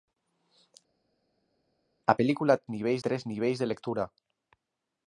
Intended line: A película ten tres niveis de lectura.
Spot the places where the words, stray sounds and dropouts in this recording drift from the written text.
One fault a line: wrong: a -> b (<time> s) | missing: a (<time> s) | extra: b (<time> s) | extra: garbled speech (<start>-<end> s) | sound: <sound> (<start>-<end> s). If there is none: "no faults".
wrong: ten -> niveis (2.7 s)